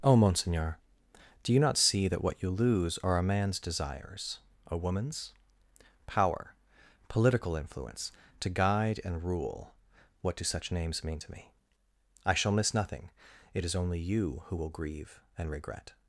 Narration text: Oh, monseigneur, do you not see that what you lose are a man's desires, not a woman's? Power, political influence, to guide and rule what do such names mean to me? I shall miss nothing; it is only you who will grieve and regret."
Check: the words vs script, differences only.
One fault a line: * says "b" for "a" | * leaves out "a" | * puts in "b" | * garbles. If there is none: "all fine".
* leaves out "not"